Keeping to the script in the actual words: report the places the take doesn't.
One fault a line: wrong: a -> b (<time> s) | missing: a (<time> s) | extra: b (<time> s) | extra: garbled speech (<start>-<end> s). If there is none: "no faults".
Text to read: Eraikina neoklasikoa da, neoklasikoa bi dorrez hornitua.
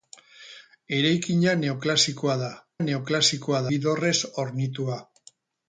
no faults